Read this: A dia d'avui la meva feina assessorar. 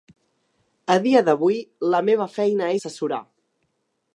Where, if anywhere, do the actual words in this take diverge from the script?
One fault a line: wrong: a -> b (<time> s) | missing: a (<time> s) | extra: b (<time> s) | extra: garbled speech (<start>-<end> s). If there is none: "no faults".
no faults